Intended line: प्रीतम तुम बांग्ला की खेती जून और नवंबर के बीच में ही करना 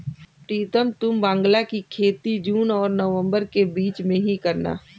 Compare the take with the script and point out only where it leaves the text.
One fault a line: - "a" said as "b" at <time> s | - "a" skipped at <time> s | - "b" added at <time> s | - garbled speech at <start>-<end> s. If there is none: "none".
none